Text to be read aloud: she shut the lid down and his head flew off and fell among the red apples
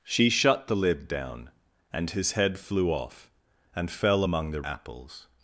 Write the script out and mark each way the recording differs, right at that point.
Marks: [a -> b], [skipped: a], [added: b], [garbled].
she shut the lid down and his head flew off and fell among the [skipped: red] apples